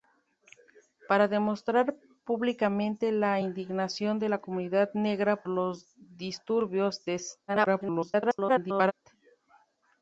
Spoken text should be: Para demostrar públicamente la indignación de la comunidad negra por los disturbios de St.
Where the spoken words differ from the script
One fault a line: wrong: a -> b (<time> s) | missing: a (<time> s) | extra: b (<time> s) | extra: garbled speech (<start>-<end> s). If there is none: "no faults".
missing: por (5.4 s)
extra: garbled speech (7.5-8.9 s)